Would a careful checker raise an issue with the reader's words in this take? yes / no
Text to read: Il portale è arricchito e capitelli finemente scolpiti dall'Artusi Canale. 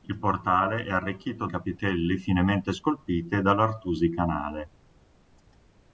no